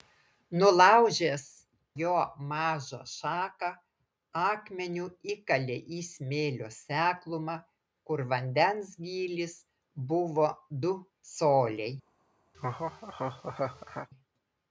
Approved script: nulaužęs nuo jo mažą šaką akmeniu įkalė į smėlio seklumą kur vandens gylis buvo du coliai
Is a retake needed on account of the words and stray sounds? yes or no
yes